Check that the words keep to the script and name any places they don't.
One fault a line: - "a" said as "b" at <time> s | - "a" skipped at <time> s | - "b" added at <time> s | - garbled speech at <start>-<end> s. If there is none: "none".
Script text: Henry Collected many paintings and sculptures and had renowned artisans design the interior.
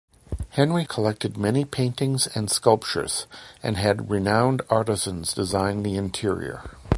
none